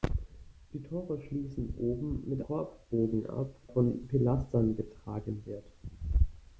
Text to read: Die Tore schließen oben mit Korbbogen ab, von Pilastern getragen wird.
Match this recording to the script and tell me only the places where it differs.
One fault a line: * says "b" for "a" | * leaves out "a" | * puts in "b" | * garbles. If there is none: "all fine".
all fine